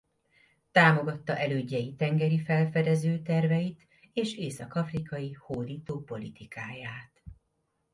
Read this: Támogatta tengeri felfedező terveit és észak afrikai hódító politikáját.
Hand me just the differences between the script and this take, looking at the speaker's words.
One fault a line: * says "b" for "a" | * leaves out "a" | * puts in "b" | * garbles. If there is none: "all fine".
* puts in "elődjei"